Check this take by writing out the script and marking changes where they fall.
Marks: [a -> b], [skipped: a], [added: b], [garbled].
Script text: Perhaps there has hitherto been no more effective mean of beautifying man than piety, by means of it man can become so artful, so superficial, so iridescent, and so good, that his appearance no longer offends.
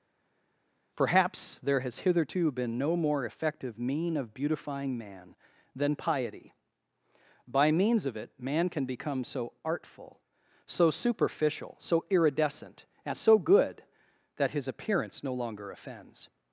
Perhaps there has hitherto been no more effective mean of beautifying man than piety, by means of it man can become so artful, so superficial, so iridescent, and so good, that his appearance no longer offends.